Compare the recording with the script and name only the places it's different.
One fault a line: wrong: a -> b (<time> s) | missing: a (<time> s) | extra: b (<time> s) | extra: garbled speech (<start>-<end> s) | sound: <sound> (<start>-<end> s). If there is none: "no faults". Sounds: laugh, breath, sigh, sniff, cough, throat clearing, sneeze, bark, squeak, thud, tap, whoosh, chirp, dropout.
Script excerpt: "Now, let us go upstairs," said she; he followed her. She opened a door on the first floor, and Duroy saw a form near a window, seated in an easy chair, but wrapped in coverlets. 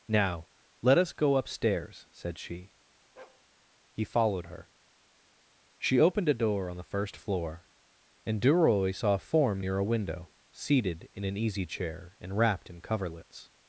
sound: bark (3.2-3.4 s)
wrong: but -> and (12.2 s)